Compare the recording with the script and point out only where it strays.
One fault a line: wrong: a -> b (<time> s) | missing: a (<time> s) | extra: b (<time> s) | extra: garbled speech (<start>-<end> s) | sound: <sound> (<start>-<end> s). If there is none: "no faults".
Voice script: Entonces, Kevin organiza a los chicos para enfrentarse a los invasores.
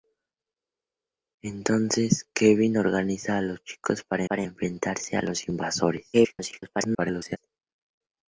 extra: para (4.2 s)
extra: garbled speech (6.1-7.4 s)